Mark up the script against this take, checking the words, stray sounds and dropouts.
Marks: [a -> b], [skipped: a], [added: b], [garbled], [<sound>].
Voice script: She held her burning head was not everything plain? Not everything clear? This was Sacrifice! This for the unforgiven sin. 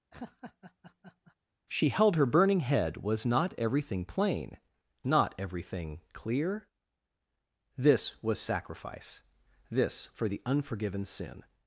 [laugh] She held her burning head was not everything plain? Not everything clear? This was Sacrifice! This for the unforgiven sin.